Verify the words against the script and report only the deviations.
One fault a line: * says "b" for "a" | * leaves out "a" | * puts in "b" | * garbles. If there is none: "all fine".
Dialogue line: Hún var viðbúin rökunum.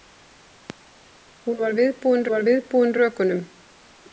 * puts in "var viðbúin"